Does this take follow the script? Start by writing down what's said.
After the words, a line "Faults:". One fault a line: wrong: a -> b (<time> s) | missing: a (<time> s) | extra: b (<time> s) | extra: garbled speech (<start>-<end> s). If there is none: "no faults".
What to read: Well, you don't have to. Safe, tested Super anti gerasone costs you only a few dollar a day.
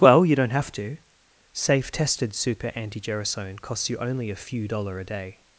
Well, you don't have to. Safe, tested Super anti gerasone costs you only a few dollar a day.
Faults:
no faults